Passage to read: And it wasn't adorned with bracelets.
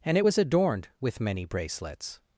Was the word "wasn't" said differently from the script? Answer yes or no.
yes